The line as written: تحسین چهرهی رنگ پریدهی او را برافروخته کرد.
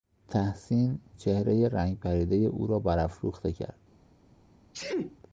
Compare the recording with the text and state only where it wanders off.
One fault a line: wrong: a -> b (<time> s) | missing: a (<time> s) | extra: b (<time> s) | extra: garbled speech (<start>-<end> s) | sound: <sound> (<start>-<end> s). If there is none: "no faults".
sound: sneeze (4.7-5.2 s)